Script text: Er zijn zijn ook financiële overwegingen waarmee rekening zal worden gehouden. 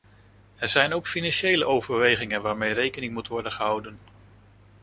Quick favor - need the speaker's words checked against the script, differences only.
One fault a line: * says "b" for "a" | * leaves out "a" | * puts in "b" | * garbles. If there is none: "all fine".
* leaves out "zijn"
* says "moet" for "zal"